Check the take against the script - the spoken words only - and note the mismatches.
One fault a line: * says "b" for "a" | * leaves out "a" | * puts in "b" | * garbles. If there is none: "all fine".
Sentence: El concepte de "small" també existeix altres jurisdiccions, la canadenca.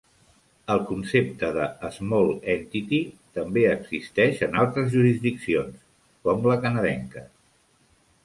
* puts in "entity"
* puts in "en"
* puts in "com"